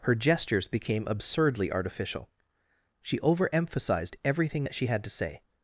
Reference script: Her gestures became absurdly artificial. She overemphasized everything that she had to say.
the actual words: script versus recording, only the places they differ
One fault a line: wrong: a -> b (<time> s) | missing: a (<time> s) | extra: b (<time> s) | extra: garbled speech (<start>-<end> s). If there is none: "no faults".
no faults